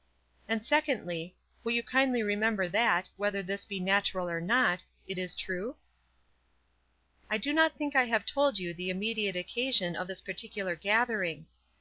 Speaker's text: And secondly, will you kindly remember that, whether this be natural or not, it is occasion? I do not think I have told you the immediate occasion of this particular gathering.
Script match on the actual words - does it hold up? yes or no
no